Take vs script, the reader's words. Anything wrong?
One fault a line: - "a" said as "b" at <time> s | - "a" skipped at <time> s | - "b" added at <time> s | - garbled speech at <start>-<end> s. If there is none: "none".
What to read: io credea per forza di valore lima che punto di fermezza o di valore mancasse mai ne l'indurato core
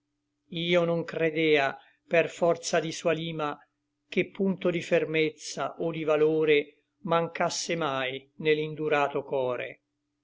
- "non" added at 0.8 s
- "valore" said as "sua" at 2.9 s